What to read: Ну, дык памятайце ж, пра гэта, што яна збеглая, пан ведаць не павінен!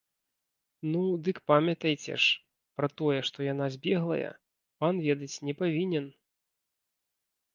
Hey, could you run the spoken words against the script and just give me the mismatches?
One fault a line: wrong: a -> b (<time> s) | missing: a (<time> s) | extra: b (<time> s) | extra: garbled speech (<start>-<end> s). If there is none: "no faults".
wrong: гэта -> тое (3.0 s)